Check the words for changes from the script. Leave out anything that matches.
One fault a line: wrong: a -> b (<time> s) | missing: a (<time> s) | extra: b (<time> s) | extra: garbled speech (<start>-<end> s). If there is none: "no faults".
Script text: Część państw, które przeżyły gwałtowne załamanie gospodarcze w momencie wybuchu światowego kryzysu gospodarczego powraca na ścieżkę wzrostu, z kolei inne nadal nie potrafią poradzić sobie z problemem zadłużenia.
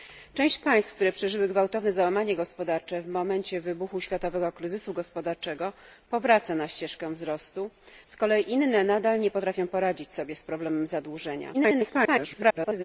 extra: garbled speech (11.5-12.8 s)